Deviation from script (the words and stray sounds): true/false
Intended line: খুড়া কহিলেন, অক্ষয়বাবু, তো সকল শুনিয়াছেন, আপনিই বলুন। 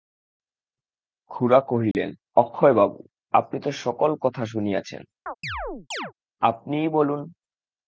true